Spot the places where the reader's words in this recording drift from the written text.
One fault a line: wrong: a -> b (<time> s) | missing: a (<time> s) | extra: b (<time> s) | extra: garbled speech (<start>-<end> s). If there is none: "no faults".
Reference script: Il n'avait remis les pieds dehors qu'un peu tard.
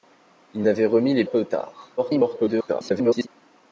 missing: pieds dehors qu'un (1.3 s)
extra: garbled speech (2.0-3.3 s)